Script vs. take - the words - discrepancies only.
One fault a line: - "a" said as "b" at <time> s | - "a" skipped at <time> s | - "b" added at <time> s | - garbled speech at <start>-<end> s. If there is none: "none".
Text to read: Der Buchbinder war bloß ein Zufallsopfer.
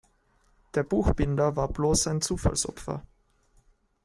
none